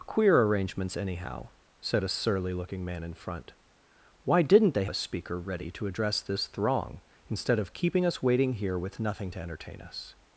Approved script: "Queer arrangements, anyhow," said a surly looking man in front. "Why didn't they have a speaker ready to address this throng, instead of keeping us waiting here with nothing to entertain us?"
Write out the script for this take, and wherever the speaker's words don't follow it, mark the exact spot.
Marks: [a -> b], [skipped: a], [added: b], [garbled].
"Queer arrangements, anyhow," said a surly looking man in front. "Why didn't they [skipped: have] a speaker ready to address this throng, instead of keeping us waiting here with nothing to entertain us?"